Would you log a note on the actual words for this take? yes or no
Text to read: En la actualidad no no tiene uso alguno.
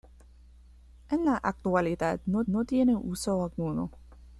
no